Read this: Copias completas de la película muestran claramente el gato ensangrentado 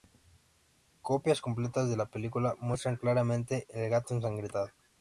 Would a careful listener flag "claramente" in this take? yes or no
no